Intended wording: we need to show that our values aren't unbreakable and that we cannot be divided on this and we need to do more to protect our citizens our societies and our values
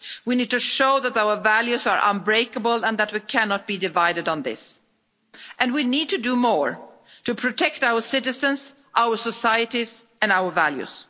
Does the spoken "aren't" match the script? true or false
false